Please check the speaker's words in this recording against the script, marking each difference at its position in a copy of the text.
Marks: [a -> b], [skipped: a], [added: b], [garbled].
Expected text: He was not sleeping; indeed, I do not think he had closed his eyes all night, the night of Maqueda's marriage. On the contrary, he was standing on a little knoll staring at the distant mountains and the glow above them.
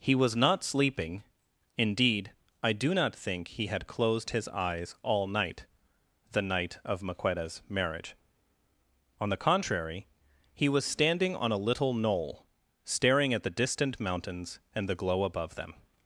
He was not sleeping; indeed, I do not think he had closed his eyes all night, the night of Maqueda's marriage. On the contrary, he was standing on a little knoll staring at the distant mountains and the glow above them.